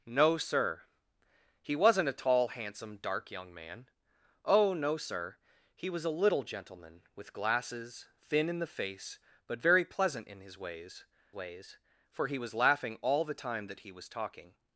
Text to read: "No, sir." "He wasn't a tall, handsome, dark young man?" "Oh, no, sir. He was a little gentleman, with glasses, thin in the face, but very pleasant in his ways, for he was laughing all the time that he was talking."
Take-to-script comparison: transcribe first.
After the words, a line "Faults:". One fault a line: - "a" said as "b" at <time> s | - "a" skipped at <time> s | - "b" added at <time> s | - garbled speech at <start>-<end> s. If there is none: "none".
"No, sir." "He wasn't a tall, handsome, dark young man?" "Oh, no, sir. He was a little gentleman, with glasses, thin in the face, but very pleasant in his ways ways, for he was laughing all the time that he was talking."
Faults:
- "ways" added at 11.3 s